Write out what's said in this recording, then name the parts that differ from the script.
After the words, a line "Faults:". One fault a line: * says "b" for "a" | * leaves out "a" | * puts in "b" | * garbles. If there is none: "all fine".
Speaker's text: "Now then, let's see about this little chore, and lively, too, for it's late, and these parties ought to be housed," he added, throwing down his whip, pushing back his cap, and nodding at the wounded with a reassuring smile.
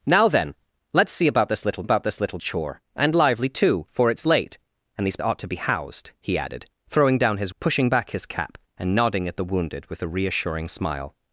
"Now then, let's see about this little about this little chore, and lively, too, for it's late, and these ought to be housed," he added, throwing down his pushing back his cap, and nodding at the wounded with a reassuring smile.
Faults:
* puts in "about this little"
* leaves out "parties"
* leaves out "whip"